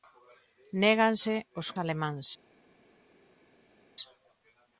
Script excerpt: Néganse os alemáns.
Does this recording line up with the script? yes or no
yes